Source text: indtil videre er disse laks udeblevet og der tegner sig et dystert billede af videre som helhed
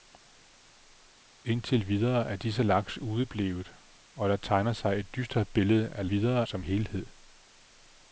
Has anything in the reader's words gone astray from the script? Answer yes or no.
no